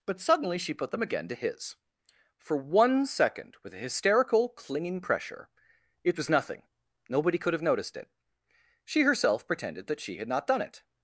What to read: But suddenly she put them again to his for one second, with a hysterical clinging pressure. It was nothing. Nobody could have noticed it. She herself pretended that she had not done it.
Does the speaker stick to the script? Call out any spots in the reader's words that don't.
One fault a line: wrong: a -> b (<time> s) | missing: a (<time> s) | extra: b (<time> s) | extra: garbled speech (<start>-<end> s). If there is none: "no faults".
no faults